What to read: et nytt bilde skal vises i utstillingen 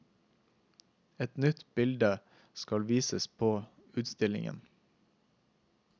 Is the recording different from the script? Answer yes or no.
yes